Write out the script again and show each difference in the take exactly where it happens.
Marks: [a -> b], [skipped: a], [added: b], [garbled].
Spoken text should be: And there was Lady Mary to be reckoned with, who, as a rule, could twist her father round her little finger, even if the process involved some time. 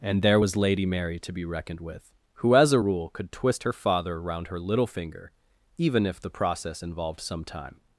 And there was Lady Mary to be reckoned with, who, as a rule, could twist her father round her little finger, even if the process involved some time.